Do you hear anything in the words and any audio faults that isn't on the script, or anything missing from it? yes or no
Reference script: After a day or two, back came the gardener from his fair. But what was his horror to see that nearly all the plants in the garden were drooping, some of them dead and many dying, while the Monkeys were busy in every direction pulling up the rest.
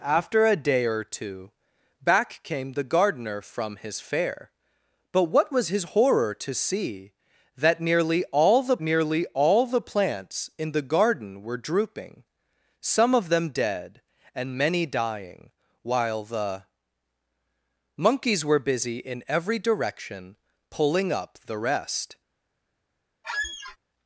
yes